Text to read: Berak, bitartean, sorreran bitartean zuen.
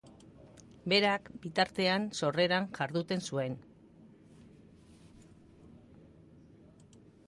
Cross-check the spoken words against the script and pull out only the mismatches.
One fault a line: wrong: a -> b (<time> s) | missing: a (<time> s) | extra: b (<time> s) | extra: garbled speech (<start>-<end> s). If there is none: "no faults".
wrong: bitartean -> jarduten (2.8 s)